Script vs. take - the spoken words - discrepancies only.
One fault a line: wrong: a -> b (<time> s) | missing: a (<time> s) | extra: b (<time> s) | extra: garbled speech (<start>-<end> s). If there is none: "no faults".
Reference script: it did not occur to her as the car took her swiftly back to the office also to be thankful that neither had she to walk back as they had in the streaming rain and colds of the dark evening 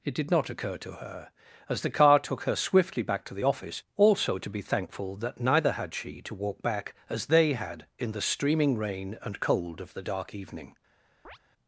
wrong: colds -> cold (9.4 s)